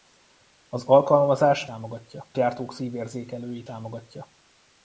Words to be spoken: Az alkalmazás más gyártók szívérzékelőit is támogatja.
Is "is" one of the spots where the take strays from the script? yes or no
yes